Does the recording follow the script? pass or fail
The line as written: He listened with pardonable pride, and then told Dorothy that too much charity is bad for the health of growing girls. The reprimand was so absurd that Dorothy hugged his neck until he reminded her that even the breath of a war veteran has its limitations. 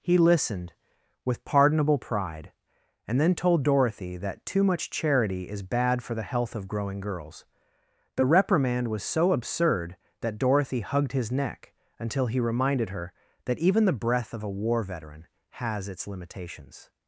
pass